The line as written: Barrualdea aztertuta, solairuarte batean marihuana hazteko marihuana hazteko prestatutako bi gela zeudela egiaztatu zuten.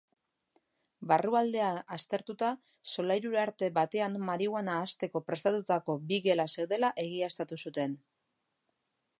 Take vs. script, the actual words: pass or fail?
fail